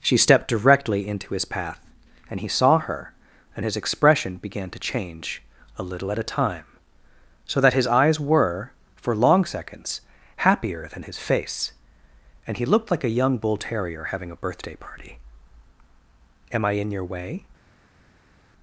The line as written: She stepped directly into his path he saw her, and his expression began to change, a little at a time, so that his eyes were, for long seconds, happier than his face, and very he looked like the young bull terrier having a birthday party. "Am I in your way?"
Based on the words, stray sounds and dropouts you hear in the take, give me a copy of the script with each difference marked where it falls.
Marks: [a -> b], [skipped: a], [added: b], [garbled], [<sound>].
She stepped directly into his path [added: and] he saw her, and his expression began to change, a little at a time, so that his eyes were, for long seconds, happier than his face, and [skipped: very] he looked like [the -> a] young bull terrier having a birthday party. "Am I in your way?"